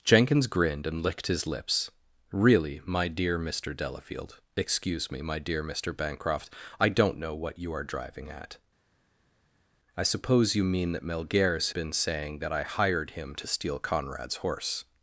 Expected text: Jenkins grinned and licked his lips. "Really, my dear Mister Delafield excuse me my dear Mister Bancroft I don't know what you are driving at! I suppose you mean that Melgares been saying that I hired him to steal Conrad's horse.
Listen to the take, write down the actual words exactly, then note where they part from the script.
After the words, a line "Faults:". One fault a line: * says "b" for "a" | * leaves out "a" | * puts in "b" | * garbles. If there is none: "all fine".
Jenkins grinned and licked his lips. "Really, my dear Mister Delafield excuse me my dear Mister Bancroft I don't know what you are driving at! I suppose you mean that Melgares been saying that I hired him to steal Conrad's horse.
Faults:
all fine